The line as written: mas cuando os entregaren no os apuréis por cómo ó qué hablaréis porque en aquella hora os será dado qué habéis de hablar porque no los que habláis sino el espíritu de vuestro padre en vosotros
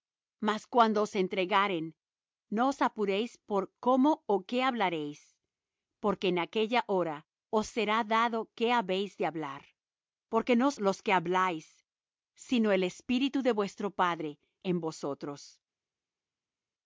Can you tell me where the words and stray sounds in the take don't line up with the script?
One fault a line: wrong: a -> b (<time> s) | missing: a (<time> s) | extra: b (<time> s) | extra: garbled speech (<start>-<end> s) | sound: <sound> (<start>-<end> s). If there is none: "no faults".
no faults